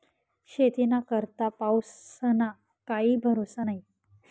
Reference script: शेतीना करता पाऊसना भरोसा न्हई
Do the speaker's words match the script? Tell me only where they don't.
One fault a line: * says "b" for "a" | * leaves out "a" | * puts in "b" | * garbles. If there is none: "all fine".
* puts in "काई"